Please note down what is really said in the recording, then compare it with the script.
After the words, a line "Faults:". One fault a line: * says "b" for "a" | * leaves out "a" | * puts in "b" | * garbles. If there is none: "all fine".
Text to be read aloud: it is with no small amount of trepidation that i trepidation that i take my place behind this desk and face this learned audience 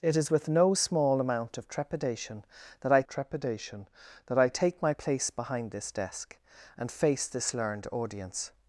it is with no small amount of trepidation that i trepidation that i take my place behind this desk and face this learned audience
Faults:
all fine